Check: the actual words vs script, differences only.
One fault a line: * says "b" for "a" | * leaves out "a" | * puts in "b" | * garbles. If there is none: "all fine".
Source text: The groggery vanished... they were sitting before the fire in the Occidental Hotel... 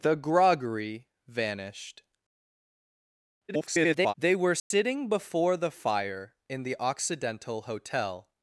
* garbles